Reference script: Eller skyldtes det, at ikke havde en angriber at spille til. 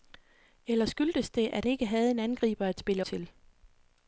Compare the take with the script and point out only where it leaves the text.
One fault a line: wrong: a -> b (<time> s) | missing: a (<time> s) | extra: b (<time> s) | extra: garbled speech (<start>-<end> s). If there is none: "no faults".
no faults